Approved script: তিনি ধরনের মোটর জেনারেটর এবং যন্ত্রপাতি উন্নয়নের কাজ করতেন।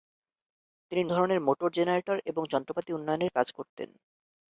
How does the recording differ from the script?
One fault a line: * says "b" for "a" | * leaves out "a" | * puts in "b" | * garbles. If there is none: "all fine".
all fine